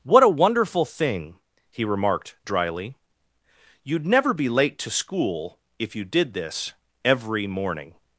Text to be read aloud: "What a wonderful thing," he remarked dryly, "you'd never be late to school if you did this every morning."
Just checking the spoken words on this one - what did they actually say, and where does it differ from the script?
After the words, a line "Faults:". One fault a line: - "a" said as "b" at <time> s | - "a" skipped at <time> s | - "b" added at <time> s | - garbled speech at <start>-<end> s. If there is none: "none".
"What a wonderful thing," he remarked dryly, "you'd never be late to school if you did this every morning."
Faults:
none